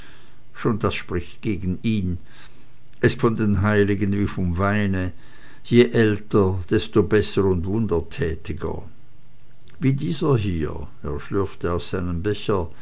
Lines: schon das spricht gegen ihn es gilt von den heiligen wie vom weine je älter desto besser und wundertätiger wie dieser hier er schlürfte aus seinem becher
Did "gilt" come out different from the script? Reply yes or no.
yes